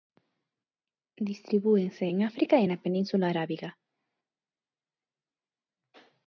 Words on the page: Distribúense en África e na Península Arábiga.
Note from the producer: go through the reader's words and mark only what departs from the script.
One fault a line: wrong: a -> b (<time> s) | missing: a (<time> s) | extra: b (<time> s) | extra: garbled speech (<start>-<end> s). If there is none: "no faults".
no faults